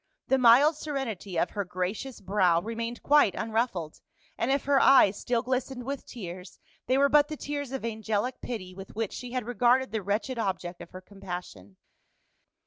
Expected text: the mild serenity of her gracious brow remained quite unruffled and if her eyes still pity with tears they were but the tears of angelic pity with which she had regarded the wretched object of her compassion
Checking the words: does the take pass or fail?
fail